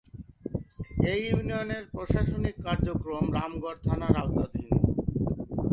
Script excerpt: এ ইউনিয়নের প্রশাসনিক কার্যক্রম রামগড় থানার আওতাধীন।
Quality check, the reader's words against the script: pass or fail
pass